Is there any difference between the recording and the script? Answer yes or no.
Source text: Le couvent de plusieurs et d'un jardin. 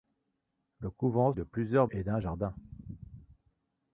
no